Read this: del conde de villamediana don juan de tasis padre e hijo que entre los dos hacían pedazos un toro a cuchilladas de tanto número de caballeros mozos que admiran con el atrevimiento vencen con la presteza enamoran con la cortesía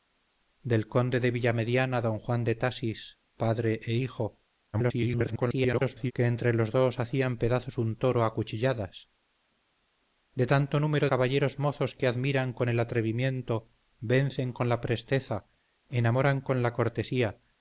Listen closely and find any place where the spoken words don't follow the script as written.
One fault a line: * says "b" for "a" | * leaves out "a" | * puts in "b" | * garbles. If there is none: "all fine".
* garbles
* leaves out "de"